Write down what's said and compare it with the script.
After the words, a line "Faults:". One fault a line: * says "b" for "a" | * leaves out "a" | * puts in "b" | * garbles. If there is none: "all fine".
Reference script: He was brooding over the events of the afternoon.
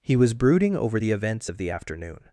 He was brooding over the events of the afternoon.
Faults:
all fine